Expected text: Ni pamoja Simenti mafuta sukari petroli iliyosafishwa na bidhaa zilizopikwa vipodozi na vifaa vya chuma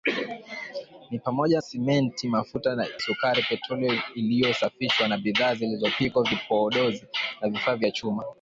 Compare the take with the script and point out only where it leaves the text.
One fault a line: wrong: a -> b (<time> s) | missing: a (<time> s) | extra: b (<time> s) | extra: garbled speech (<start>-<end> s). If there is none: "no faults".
no faults